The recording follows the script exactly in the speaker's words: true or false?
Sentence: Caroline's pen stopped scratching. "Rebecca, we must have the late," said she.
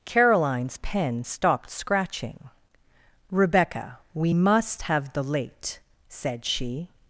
true